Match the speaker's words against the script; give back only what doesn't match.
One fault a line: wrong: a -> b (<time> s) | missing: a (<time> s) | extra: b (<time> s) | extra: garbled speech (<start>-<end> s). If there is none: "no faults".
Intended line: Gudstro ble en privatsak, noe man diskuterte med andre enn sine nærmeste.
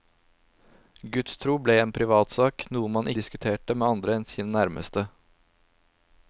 no faults